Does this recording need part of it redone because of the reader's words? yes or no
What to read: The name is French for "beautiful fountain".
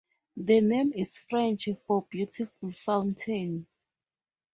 no